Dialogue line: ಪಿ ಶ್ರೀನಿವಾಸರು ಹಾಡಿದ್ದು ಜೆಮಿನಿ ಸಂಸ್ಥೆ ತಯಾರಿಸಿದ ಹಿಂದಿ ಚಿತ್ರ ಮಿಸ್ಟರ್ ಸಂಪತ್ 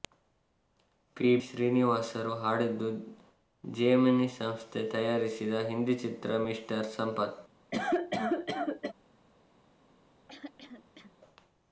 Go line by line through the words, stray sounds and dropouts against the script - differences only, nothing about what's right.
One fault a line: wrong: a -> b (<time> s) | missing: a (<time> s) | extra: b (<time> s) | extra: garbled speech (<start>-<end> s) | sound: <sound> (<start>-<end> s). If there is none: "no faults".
sound: cough (7.7-8.9 s)
sound: throat clearing (10.3-11.1 s)